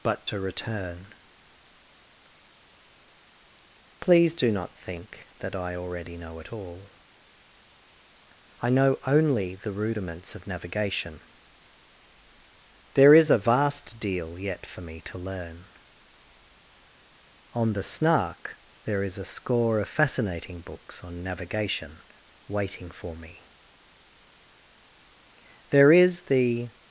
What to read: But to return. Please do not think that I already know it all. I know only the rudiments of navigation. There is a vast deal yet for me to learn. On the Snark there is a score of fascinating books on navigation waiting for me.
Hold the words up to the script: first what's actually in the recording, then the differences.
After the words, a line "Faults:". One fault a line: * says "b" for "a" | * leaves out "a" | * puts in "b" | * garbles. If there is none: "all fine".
But to return. Please do not think that I already know it all. I know only the rudiments of navigation. There is a vast deal yet for me to learn. On the Snark there is a score of fascinating books on navigation waiting for me. There is the
Faults:
* puts in "There is the"